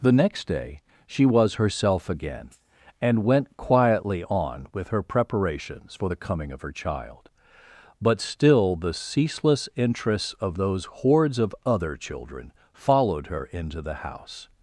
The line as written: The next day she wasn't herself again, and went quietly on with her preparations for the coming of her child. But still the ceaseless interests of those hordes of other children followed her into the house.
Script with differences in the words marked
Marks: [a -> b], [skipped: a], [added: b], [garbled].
The next day she [wasn't -> was] herself again, and went quietly on with her preparations for the coming of her child. But still the ceaseless interests of those hordes of other children followed her into the house.